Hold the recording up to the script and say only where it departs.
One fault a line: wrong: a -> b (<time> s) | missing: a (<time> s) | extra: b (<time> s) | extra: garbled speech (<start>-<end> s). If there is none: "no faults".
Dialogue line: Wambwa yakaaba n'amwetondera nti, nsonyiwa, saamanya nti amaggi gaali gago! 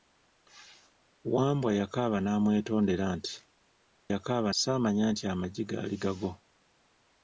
wrong: nsonyiwa -> yakaaba (4.1 s)